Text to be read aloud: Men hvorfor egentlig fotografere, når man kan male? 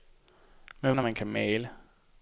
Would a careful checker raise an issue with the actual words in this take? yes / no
yes